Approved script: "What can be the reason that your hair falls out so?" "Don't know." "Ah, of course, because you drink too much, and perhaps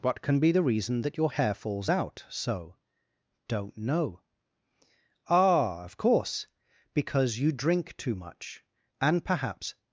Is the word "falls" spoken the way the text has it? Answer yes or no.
yes